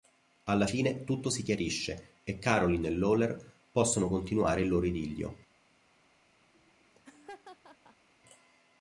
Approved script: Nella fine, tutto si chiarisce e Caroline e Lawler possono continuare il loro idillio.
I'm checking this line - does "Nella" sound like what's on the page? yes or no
no